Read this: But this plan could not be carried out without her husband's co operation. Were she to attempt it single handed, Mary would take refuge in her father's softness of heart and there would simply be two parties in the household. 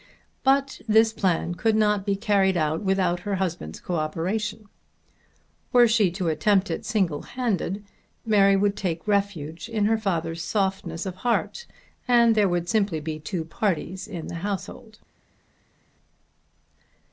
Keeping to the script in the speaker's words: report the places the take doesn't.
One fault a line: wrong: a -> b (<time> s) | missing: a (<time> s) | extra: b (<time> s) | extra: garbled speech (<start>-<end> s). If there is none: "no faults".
no faults